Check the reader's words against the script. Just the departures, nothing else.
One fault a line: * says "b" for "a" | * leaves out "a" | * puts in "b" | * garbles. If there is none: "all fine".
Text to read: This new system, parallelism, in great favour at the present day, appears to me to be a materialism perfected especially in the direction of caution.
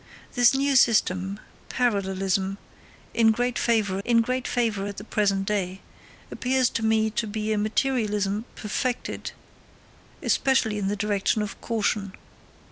* puts in "in great favour"